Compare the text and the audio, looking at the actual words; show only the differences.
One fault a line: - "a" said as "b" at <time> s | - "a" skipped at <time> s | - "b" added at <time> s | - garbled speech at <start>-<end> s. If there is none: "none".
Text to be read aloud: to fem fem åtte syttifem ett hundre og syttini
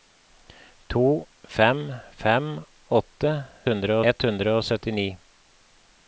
- "syttifem" said as "hundre" at 3.7 s